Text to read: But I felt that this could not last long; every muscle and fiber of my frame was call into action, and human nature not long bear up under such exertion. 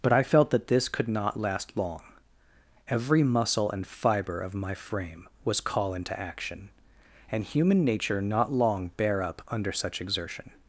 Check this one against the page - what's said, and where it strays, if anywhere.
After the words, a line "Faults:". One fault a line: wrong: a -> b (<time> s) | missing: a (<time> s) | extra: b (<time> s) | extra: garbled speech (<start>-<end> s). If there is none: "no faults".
But I felt that this could not last long; every muscle and fiber of my frame was call into action, and human nature not long bear up under such exertion.
Faults:
no faults